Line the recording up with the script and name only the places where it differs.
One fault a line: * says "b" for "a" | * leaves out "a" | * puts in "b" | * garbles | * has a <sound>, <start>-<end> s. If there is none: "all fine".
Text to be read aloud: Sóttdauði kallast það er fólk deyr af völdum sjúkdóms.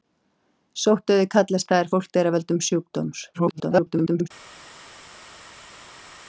* garbles